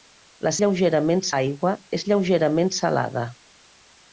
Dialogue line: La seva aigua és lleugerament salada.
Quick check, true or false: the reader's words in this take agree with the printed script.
false